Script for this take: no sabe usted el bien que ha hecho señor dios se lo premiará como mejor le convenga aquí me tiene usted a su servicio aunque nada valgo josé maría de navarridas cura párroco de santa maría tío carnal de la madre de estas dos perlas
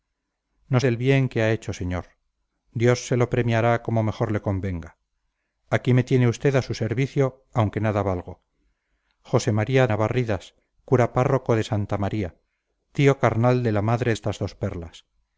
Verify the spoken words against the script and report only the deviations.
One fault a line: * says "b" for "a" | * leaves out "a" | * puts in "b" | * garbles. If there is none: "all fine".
* leaves out "sabe usted"
* leaves out "de"
* leaves out "de"